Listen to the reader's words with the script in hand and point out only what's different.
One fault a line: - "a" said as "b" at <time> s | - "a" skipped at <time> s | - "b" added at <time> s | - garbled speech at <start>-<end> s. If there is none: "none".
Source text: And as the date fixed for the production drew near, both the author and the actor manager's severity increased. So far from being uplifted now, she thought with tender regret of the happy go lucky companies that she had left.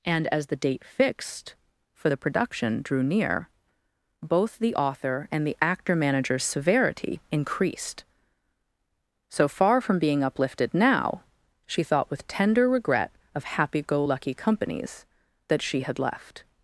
- "the" skipped at 13.4 s